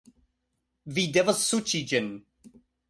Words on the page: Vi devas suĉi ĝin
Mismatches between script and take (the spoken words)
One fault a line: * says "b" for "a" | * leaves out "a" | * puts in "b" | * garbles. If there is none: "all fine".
all fine